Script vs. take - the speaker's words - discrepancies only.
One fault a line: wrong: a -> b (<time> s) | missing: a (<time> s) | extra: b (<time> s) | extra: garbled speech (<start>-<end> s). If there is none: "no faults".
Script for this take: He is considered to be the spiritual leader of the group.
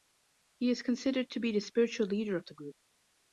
no faults